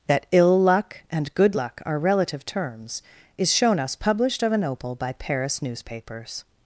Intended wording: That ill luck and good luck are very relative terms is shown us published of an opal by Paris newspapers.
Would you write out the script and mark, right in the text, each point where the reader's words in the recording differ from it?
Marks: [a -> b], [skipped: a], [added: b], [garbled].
That ill luck and good luck are [skipped: very] relative terms is shown us published of an opal by Paris newspapers.